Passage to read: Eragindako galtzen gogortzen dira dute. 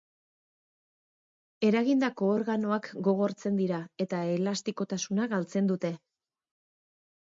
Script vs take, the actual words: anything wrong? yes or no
yes